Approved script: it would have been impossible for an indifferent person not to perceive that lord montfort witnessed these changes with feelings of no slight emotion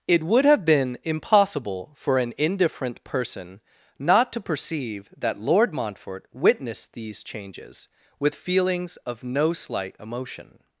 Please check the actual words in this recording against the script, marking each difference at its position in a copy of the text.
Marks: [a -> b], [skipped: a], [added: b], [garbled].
it would have been impossible for an indifferent person not to perceive that lord montfort witnessed these changes with feelings of no slight emotion